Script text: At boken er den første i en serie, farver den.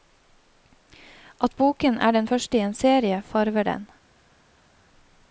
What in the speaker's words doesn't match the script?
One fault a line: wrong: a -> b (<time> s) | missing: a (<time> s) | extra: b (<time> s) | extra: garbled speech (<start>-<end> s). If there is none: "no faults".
no faults